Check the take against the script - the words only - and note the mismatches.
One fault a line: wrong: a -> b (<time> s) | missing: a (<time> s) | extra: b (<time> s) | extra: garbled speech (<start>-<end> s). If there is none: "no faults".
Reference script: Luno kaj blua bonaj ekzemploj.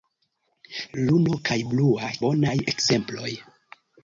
no faults